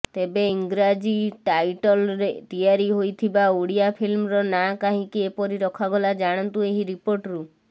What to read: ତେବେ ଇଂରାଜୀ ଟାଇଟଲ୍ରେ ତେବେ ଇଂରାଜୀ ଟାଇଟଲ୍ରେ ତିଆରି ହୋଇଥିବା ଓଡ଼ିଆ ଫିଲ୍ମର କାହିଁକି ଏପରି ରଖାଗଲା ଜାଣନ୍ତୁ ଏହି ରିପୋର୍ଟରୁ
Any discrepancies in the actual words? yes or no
yes